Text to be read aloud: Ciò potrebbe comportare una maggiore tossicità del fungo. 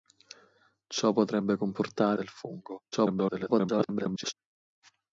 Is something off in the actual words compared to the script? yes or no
yes